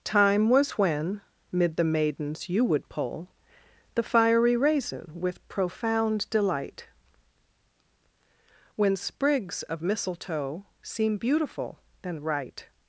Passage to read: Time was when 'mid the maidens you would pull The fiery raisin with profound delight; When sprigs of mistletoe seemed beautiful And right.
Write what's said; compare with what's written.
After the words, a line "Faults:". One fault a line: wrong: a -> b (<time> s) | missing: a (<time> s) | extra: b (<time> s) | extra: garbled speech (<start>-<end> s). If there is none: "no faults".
Time was when 'mid the maidens you would pull The fiery raisin with profound delight; When sprigs of mistletoe seem beautiful And right.
Faults:
wrong: seemed -> seem (10.8 s)